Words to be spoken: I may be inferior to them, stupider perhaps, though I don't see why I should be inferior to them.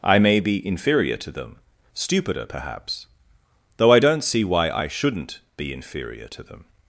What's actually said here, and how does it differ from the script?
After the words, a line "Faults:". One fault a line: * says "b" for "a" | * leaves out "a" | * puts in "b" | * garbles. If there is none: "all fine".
I may be inferior to them, stupider perhaps, though I don't see why I shouldn't be inferior to them.
Faults:
* says "shouldn't" for "should"